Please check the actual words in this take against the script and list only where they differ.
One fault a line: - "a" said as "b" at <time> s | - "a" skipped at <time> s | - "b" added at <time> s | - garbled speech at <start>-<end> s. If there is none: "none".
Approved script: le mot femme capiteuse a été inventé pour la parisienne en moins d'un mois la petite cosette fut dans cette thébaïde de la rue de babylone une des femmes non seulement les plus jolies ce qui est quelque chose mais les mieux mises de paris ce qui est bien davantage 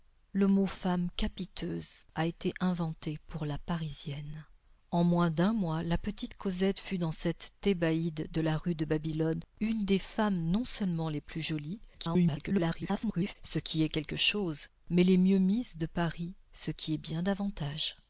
- garbled speech at 11.9-13.4 s